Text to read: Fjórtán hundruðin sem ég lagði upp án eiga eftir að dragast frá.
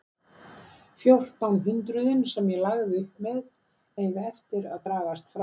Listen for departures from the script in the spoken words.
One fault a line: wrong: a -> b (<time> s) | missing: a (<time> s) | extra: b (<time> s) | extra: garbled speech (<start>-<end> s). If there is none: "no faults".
wrong: án -> með (3.3 s)